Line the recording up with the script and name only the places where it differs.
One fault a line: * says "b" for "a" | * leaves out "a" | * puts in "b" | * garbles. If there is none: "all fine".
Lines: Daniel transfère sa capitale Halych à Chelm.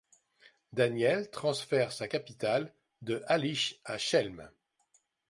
* puts in "de"